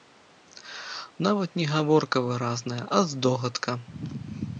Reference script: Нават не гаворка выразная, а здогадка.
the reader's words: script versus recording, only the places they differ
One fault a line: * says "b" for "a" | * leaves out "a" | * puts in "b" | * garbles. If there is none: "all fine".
all fine